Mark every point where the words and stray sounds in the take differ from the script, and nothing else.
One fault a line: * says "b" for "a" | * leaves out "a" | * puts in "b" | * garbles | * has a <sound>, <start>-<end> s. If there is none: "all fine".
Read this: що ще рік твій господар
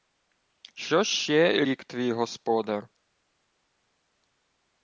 all fine